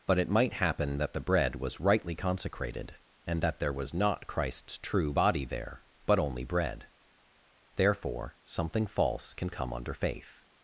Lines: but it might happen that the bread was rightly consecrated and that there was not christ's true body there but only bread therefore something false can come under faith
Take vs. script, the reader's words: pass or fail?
pass